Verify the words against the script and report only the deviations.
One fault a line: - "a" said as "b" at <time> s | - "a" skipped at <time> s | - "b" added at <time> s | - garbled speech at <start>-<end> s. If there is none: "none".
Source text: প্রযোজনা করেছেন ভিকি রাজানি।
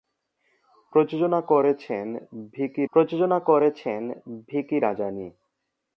- "প্রযোজনা করেছেন ভিকি" added at 2.9 s